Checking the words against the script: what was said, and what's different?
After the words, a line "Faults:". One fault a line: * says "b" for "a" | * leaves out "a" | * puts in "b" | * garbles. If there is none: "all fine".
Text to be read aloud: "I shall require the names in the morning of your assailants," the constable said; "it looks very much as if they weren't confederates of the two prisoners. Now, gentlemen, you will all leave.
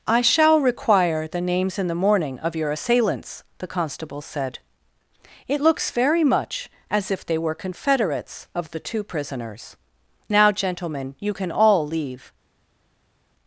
"I shall require the names in the morning of your assailants," the constable said; "it looks very much as if they were confederates of the two prisoners. Now, gentlemen, you can all leave.
Faults:
* says "were" for "weren't"
* says "can" for "will"